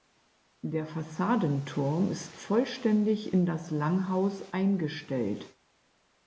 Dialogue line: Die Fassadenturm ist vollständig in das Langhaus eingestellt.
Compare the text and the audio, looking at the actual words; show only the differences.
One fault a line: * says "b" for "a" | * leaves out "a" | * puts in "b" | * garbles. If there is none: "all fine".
* says "Der" for "Die"